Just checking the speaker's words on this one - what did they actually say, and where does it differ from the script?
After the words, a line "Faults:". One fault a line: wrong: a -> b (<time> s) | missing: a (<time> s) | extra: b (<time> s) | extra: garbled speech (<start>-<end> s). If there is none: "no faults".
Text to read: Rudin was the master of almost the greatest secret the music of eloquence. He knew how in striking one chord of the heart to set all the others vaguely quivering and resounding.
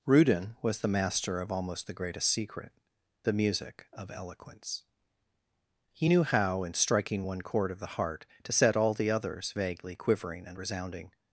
Rudin was the master of almost the greatest secret the music of eloquence. He knew how in striking one chord of the heart to set all the others vaguely quivering and resounding.
Faults:
no faults